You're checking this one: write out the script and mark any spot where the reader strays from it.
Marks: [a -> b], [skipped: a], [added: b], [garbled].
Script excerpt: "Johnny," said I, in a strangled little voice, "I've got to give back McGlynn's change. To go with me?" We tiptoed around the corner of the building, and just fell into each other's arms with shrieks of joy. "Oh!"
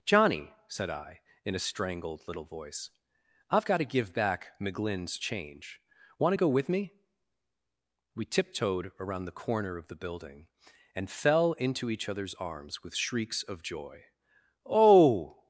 "Johnny," said I, in a strangled little voice, "I've got to give back McGlynn's change. [added: Want] To go with me?" We tiptoed around the corner of the building, and [skipped: just] fell into each other's arms with shrieks of joy. "Oh!"